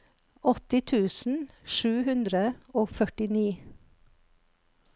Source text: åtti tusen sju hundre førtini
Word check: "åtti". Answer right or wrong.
right